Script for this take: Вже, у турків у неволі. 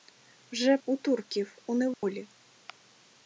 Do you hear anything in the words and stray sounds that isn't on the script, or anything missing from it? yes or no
yes